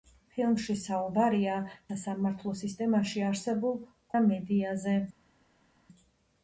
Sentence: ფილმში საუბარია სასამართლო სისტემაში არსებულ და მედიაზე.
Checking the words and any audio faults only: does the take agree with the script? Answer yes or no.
yes